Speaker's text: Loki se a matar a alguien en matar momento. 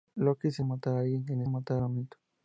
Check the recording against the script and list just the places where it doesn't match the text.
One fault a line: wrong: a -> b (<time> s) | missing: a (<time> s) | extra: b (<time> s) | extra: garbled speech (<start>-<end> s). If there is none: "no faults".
no faults